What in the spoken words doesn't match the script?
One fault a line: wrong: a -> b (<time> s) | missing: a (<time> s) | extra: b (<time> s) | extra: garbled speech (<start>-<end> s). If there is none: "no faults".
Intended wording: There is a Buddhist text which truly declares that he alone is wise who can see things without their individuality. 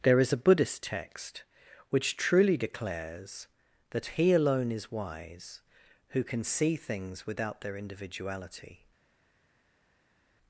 no faults